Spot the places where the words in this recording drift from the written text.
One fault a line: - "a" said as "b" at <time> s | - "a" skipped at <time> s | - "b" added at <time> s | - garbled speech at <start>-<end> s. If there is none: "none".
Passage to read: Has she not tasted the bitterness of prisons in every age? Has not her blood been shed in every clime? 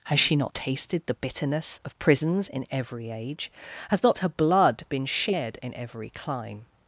none